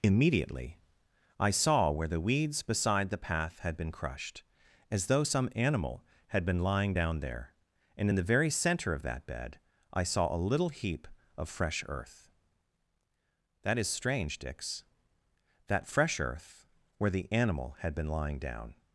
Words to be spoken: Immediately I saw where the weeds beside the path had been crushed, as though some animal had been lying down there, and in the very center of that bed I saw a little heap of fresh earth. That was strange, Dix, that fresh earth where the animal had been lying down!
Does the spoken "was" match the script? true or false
false